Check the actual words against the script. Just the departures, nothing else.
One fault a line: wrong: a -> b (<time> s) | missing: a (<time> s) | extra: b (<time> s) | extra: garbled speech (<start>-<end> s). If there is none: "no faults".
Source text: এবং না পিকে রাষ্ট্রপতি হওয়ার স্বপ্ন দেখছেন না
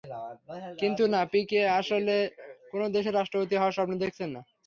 wrong: এবং -> কিন্তু (0.8 s)
extra: আসলে কোনো দেশের (1.8 s)